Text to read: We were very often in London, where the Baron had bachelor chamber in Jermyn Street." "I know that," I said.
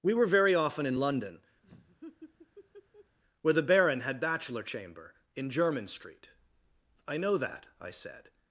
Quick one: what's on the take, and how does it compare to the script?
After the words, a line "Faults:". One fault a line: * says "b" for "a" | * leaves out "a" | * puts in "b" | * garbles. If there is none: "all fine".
We were very often in London, where the Baron had bachelor chamber in Jermyn Street." "I know that," I said.
Faults:
all fine